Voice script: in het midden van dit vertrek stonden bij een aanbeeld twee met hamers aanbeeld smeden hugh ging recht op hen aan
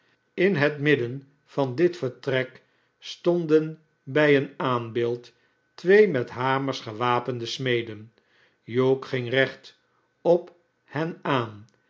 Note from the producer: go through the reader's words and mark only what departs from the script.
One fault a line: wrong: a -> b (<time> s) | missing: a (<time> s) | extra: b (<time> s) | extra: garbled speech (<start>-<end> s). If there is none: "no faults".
wrong: aanbeeld -> gewapende (6.8 s)